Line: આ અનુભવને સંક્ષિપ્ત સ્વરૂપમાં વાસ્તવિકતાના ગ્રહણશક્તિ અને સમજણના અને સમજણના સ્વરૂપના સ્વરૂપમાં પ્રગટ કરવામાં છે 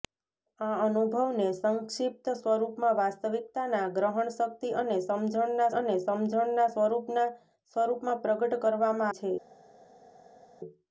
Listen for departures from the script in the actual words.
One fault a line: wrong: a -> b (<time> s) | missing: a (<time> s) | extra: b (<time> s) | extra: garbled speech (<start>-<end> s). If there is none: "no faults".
no faults